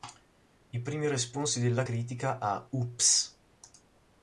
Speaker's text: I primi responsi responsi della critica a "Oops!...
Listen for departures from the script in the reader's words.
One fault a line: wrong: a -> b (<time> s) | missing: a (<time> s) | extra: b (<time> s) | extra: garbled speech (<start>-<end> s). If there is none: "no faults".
missing: responsi (1.6 s)